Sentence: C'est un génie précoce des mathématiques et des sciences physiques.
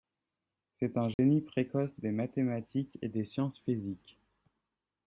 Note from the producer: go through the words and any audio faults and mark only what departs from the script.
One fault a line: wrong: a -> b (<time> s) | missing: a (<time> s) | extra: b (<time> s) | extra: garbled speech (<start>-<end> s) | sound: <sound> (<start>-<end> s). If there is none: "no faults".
sound: dropout (1.1-1.2 s)